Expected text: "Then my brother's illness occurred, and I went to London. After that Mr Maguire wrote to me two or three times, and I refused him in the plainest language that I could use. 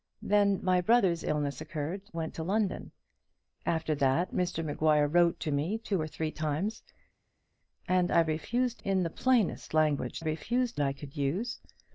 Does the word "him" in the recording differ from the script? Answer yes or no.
yes